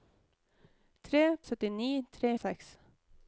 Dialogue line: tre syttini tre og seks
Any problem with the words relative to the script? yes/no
no